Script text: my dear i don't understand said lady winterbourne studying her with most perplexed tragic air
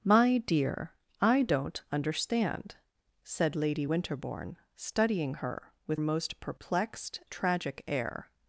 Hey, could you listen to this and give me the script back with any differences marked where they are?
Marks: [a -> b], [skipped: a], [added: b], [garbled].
my dear i don't understand said lady winterbourne studying her with most perplexed tragic air